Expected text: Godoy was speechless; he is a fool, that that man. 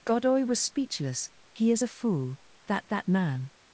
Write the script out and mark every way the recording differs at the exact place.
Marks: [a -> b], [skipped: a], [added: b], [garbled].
Godoy was speechless; he is a fool, that that man.